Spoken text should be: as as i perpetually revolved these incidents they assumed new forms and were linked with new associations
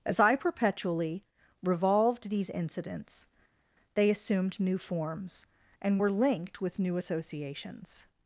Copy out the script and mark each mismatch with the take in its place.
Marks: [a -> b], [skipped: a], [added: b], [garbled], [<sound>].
as [skipped: as] i perpetually revolved these incidents they assumed new forms and were linked with new associations